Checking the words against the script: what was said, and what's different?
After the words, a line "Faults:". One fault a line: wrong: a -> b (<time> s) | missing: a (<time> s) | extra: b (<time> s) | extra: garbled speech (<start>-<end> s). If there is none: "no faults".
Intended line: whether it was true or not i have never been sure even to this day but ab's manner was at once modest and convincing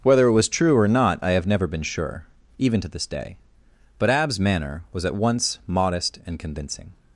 whether it was true or not i have never been sure even to this day but ab's manner was at once modest and convincing
Faults:
no faults